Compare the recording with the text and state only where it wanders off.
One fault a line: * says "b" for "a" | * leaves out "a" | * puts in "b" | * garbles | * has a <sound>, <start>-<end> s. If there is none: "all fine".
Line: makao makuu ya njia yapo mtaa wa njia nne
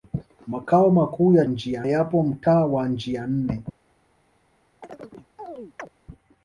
* has a chirp, 4.8-5.9 s